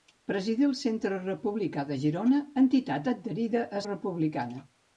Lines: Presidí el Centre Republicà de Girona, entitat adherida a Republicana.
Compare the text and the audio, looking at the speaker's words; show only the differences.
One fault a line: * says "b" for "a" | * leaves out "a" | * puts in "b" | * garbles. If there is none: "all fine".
all fine